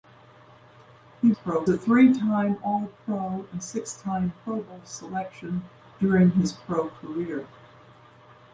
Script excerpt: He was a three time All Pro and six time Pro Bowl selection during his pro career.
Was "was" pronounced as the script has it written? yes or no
no